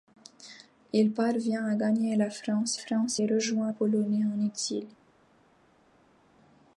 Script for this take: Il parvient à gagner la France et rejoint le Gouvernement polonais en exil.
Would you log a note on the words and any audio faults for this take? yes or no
yes